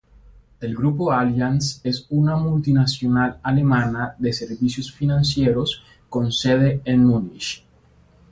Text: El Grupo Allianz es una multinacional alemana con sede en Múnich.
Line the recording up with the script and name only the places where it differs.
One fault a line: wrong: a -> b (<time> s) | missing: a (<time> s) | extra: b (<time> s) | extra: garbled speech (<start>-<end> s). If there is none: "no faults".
extra: de servicios financieros (4.2 s)